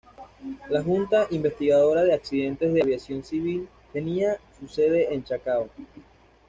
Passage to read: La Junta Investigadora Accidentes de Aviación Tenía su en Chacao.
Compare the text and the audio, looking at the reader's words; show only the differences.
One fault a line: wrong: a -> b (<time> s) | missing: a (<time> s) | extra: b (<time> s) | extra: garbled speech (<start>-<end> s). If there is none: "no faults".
extra: de (2.0 s)
extra: Civil (3.2 s)
extra: sede (4.7 s)